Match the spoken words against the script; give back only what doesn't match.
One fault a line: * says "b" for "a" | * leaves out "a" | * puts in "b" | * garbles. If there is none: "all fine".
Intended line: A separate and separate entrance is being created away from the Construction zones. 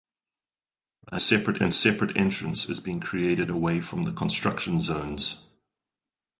all fine